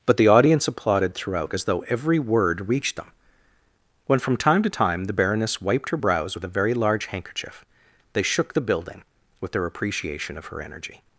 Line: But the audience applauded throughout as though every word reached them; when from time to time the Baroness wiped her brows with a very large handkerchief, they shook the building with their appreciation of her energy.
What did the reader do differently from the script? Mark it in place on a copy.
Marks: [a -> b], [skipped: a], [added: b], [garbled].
But the audience applauded throughout as though every word reached them; when from time to time the Baroness wiped her brows with a very large handkerchief, they shook the building with their appreciation of her energy.